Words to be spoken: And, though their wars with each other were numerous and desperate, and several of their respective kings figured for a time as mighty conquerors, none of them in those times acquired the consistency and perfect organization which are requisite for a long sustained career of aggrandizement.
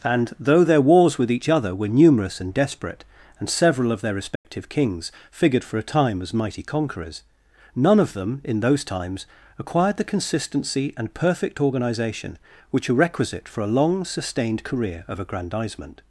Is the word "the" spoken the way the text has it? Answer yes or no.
yes